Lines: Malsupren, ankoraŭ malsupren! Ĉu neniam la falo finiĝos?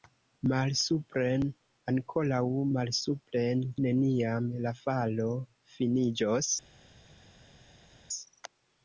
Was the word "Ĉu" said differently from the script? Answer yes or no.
yes